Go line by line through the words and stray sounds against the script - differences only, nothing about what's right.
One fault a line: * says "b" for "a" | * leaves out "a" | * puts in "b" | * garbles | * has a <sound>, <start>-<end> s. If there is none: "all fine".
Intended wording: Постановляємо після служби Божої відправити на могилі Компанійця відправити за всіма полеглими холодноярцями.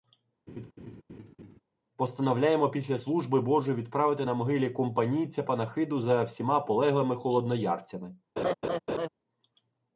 * has a laugh, 0.5-1.6 s
* says "панахиду" for "відправити"
* has a laugh, 8.4-9.1 s